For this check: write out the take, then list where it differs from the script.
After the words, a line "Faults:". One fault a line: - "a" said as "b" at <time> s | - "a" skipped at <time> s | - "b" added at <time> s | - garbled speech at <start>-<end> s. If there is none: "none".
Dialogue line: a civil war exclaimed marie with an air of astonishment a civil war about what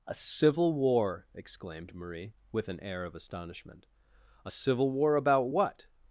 a civil war exclaimed marie with an air of astonishment a civil war about what
Faults:
none